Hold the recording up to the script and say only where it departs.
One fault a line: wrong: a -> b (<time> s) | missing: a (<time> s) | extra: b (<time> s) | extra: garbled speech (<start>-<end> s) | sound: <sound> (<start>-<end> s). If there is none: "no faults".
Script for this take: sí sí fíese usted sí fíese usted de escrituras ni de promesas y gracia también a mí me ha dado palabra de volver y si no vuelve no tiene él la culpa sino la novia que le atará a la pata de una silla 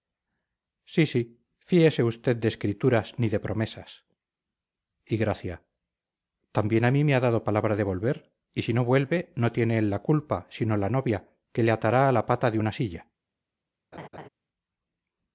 missing: sí fíese usted (2.4 s)
sound: laugh (13.9-14.3 s)